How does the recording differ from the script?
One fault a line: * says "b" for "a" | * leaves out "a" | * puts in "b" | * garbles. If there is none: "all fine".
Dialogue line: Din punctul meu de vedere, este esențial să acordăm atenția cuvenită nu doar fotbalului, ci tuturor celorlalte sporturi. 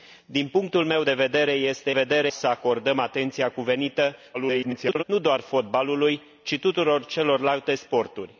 * says "vedere" for "esențial"
* garbles